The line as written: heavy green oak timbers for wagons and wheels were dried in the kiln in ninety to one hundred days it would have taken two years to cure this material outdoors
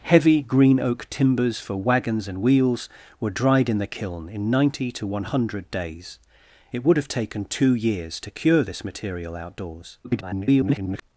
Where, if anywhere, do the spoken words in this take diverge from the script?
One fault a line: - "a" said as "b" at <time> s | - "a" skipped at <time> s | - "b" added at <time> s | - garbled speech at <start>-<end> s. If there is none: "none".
- garbled speech at 10.0-11.0 s